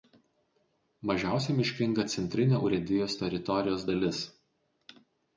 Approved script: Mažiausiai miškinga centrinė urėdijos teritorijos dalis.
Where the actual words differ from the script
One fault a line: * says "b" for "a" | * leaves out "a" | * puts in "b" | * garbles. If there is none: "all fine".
all fine